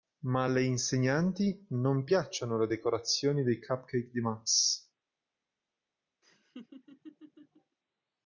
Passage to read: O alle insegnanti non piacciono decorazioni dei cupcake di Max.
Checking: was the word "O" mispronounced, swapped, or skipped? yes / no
yes